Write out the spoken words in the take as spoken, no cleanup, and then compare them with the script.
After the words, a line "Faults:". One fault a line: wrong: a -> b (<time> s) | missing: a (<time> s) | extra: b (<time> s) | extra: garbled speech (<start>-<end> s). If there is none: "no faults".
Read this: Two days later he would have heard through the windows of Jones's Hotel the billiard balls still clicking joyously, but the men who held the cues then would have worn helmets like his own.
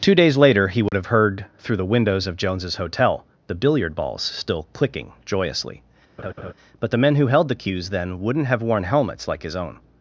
Two days later he would have heard through the windows of Jones's Hotel the billiard balls still clicking joyously, but the men who held the cues then wouldn't have worn helmets like his own.
Faults:
wrong: would -> wouldn't (8.2 s)